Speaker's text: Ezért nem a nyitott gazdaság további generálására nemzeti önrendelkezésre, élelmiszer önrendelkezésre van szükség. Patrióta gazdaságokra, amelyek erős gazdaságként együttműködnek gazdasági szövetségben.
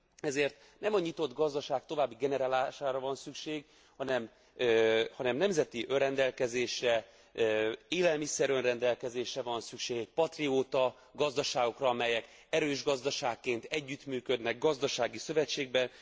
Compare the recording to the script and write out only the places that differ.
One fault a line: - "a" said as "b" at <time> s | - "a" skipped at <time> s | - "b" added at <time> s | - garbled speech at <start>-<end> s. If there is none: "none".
- "van szükség hanem" added at 3.0 s